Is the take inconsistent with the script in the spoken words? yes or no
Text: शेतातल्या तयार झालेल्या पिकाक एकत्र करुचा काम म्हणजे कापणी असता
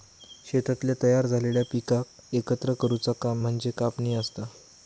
no